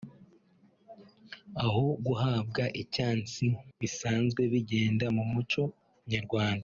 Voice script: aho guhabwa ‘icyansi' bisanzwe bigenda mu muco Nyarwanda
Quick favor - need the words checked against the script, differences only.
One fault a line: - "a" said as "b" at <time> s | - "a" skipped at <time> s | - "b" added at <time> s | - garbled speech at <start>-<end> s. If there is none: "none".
none